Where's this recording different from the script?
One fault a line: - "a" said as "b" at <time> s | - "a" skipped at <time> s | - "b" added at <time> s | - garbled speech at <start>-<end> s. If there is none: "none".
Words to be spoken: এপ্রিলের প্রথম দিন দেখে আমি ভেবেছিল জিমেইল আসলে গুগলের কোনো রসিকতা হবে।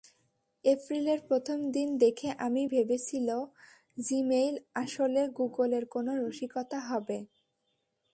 none